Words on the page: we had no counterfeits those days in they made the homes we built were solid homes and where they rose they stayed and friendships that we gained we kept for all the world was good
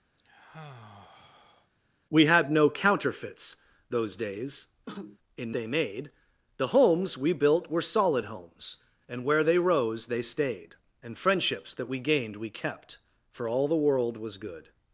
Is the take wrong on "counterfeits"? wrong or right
right